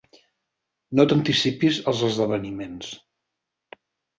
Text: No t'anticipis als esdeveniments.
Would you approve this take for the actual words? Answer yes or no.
yes